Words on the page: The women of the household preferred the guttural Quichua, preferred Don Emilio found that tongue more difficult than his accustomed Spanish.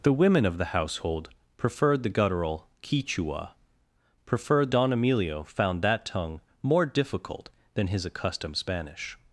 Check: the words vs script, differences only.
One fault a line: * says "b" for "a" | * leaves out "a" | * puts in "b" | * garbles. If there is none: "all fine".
all fine